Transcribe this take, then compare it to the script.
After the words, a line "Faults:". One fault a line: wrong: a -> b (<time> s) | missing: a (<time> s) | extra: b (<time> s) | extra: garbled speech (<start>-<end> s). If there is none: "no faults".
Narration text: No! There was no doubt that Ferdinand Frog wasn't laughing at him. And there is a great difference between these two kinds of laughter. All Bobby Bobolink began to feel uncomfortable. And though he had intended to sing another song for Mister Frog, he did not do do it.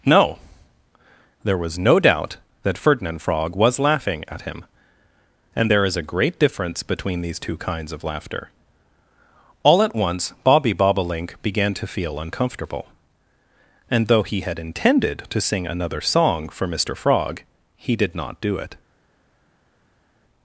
No! There was no doubt that Ferdinand Frog was laughing at him. And there is a great difference between these two kinds of laughter. All at once Bobby Bobolink began to feel uncomfortable. And though he had intended to sing another song for Mister Frog, he did not do it.
Faults:
wrong: wasn't -> was (3.5 s)
extra: at once (9.8 s)
missing: do (18.6 s)